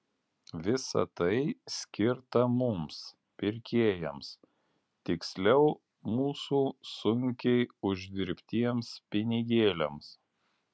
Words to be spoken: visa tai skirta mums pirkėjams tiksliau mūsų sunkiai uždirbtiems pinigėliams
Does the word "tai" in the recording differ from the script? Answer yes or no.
no